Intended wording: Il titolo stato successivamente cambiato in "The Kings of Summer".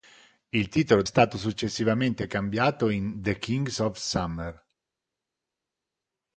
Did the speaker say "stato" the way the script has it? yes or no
yes